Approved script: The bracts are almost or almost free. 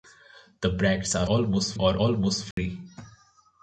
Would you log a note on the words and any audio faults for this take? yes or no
yes